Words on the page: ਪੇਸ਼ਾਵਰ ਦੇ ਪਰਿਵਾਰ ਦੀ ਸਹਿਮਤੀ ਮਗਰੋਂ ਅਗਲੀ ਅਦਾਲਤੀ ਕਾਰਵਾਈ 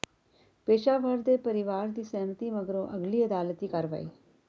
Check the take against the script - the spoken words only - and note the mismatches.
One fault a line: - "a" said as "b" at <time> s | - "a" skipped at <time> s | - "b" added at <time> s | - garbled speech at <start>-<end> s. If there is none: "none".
none